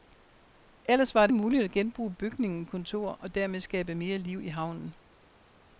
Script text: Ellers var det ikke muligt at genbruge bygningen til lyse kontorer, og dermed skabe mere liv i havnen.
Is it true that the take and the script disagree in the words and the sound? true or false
true